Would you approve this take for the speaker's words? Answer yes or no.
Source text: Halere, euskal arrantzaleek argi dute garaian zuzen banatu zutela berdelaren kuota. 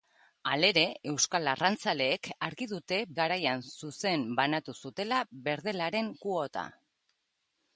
yes